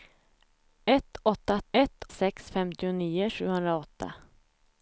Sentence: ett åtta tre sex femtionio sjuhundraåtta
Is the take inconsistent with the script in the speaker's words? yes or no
yes